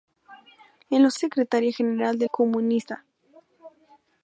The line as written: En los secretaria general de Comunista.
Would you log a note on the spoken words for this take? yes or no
no